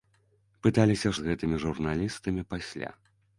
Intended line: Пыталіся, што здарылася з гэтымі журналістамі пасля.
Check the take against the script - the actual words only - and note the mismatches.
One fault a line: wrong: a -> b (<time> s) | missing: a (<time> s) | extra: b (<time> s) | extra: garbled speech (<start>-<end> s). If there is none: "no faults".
missing: што здарылася (1.1 s)